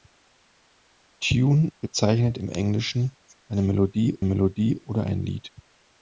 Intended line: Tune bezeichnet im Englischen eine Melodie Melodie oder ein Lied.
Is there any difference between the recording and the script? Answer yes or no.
no